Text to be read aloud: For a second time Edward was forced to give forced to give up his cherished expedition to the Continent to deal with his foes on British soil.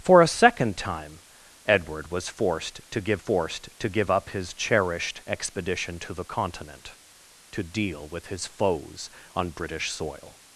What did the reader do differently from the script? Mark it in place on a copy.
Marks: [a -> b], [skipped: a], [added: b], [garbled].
For a second time Edward was forced to give forced to give up his cherished expedition to the Continent to deal with his foes on British soil.